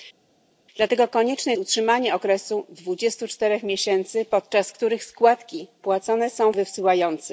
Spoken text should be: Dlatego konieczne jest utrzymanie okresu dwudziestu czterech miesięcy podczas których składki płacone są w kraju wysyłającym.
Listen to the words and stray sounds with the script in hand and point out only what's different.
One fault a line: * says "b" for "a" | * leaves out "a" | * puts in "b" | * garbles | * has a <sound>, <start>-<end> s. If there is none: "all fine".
* leaves out "jest"
* leaves out "w kraju"